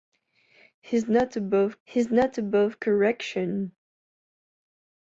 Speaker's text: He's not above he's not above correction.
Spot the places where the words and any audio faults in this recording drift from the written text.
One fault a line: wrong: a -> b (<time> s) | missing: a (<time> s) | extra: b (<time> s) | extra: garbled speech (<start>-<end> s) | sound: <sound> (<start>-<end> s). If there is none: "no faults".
no faults